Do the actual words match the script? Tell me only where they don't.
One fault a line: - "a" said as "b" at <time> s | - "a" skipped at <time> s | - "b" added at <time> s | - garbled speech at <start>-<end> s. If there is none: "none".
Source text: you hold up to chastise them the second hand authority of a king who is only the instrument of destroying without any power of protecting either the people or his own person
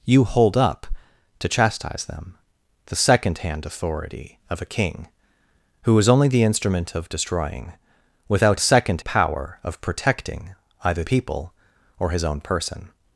- "any" said as "second" at 8.6 s
- "the" skipped at 11.0 s